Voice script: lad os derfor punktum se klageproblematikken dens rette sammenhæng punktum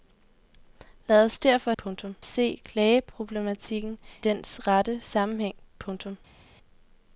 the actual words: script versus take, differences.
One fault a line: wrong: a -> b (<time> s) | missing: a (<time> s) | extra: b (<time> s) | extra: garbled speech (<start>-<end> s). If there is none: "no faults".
no faults